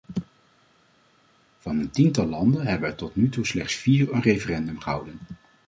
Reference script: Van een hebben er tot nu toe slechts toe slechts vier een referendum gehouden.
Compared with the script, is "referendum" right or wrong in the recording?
right